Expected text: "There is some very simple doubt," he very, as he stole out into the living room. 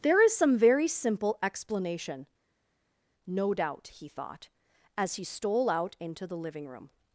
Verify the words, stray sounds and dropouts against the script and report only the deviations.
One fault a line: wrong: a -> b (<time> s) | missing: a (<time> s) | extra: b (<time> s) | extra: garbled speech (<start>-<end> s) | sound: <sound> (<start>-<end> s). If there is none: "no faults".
extra: explanation no (1.4 s)
wrong: very -> thought (4.1 s)